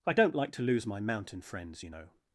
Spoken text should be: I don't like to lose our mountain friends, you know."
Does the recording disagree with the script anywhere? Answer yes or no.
yes